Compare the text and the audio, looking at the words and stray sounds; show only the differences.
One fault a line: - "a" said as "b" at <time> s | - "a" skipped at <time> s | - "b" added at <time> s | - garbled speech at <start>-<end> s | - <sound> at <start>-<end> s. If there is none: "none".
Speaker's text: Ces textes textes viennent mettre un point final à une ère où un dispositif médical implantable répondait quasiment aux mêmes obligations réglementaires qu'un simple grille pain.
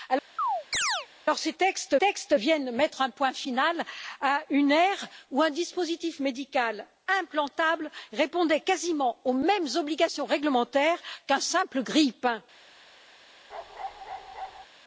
- chirp at 0.4-1.1 s
- bark at 13.5-14.7 s